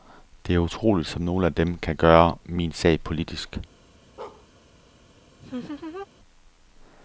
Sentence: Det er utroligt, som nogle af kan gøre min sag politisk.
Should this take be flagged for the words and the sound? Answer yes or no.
yes